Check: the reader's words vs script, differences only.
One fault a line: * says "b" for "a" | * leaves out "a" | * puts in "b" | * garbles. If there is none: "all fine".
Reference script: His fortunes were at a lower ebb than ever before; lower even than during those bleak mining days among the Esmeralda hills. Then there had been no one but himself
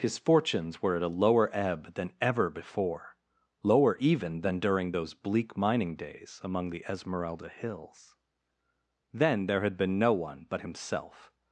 all fine